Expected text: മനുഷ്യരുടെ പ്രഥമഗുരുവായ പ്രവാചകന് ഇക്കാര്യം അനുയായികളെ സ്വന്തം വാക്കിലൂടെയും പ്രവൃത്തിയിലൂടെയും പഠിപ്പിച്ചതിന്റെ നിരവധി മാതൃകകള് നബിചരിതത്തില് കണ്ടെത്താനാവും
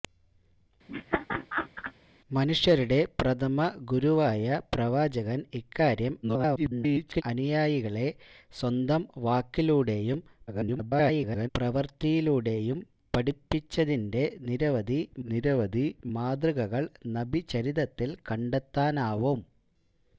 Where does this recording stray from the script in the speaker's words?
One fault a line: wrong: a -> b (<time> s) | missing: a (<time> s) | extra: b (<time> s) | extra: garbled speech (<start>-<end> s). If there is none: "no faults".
extra: garbled speech (6.2-7.2 s)
extra: garbled speech (10.5-11.5 s)
extra: നിരവധി (15.3 s)